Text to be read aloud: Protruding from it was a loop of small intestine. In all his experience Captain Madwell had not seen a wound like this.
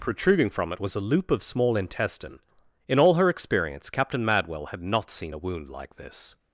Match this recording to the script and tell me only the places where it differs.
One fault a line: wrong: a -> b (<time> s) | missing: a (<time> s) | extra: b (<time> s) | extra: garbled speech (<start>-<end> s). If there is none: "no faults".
wrong: his -> her (3.2 s)